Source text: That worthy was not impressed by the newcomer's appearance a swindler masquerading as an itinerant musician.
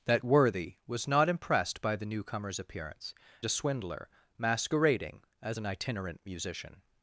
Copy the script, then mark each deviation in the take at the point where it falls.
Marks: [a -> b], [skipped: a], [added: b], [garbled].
That worthy was not impressed by the newcomer's appearance a swindler masquerading as an itinerant musician.